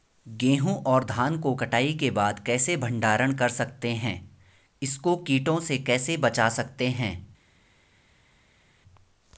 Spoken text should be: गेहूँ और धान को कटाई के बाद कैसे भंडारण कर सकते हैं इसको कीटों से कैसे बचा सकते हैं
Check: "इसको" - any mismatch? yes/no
no